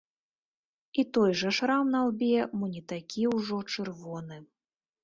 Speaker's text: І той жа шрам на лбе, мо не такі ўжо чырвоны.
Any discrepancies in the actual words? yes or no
no